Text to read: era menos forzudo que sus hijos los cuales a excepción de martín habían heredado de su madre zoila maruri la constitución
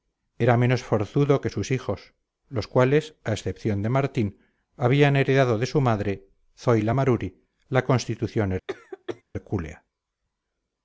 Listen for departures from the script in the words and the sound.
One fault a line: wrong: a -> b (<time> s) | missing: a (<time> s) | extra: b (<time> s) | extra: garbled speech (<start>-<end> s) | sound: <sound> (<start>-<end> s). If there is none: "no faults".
sound: cough (8.7-9.2 s)